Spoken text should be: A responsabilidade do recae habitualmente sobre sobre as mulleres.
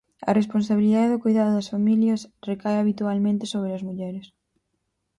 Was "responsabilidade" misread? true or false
false